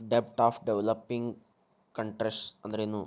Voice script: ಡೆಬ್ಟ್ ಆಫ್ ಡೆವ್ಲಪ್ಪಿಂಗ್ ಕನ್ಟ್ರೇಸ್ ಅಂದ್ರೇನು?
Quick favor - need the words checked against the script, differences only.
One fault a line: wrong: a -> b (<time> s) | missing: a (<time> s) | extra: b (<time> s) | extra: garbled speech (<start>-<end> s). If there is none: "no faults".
no faults